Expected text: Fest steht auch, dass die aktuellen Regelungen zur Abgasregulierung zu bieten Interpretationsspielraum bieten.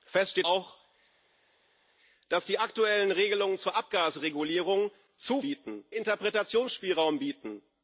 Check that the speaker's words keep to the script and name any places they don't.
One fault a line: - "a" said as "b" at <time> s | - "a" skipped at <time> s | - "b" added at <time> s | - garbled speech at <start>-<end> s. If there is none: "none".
none